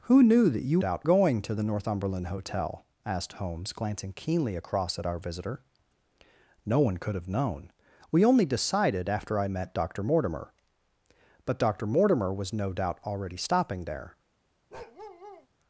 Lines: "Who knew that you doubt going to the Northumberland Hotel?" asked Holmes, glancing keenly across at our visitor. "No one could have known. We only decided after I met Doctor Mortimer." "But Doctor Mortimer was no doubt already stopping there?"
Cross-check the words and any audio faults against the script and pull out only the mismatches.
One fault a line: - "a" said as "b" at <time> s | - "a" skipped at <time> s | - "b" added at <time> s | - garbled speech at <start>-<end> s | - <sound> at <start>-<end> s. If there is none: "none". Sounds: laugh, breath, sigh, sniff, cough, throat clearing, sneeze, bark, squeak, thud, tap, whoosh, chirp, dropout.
- bark at 14.7-15.5 s